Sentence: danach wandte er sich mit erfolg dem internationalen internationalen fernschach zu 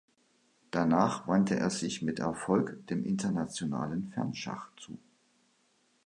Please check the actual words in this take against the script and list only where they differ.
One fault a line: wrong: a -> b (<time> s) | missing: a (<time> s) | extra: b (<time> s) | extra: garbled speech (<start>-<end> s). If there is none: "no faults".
missing: internationalen (4.1 s)